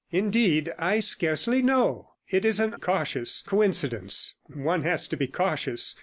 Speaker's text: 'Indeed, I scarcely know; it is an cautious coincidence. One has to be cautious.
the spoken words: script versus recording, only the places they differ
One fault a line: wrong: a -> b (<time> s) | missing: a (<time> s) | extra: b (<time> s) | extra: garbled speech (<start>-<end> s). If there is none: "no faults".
no faults